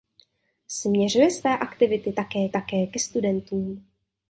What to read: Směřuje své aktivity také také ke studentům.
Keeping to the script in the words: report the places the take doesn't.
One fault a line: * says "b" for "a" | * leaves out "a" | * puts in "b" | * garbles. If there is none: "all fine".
all fine